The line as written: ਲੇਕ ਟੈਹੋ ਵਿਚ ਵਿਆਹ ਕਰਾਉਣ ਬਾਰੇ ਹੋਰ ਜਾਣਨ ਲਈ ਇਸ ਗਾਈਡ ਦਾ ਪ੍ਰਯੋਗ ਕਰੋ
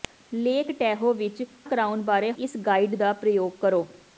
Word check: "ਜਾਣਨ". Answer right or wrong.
wrong